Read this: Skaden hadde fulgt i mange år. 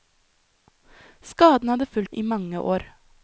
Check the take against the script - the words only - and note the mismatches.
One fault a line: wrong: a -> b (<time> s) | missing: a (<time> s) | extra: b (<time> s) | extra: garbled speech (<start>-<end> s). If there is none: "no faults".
no faults